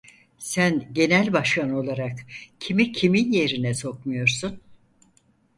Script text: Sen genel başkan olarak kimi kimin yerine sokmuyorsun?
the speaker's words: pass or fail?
pass